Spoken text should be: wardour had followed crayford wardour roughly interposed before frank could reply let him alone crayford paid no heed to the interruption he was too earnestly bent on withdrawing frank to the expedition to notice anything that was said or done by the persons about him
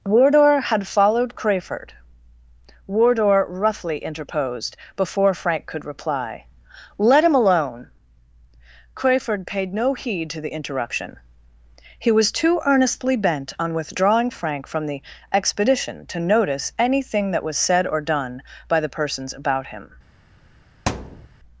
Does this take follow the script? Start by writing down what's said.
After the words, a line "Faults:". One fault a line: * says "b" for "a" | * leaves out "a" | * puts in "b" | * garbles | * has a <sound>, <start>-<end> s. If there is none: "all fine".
wardour had followed crayford wardour roughly interposed before frank could reply let him alone crayford paid no heed to the interruption he was too earnestly bent on withdrawing frank from the expedition to notice anything that was said or done by the persons about him
Faults:
* says "from" for "to"
* has a thud, 20.9-21.3 s